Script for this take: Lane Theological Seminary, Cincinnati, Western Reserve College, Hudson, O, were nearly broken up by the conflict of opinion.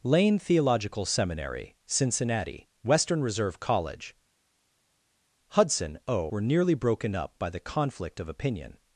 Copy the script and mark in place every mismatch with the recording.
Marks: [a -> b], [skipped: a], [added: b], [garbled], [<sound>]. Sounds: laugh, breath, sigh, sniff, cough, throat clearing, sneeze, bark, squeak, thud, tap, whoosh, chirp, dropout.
Lane Theological Seminary, Cincinnati, Western Reserve College, Hudson, O, were nearly broken up by the conflict of opinion.